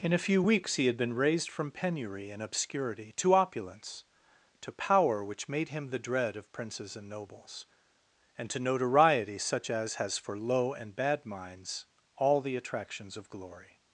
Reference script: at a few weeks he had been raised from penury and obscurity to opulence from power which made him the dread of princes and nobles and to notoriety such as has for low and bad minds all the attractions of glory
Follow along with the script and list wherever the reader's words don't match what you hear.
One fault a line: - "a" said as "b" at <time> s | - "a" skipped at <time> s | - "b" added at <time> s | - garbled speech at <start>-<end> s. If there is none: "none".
- "at" said as "in" at 0.0 s
- "from" said as "to" at 4.6 s